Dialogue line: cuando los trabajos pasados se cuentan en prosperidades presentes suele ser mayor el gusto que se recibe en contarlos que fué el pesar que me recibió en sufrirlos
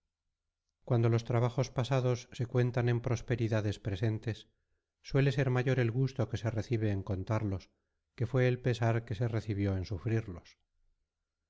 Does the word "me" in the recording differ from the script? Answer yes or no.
yes